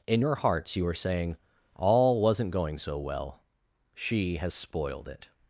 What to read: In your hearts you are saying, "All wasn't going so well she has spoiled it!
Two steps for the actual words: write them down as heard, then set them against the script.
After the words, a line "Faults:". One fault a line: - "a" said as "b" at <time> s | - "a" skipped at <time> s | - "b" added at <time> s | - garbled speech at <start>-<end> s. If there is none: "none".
In your hearts you are saying, "All wasn't going so well she has spoiled it!
Faults:
none